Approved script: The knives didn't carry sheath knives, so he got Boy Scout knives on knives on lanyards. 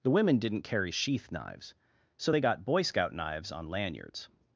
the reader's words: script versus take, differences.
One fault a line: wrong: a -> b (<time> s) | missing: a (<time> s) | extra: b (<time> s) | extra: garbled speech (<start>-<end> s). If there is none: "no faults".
wrong: knives -> women (0.1 s)
wrong: he -> they (2.3 s)
missing: knives on (3.7 s)